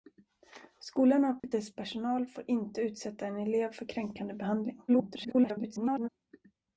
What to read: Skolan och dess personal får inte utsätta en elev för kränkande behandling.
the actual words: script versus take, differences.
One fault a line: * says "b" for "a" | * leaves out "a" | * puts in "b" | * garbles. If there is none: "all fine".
* garbles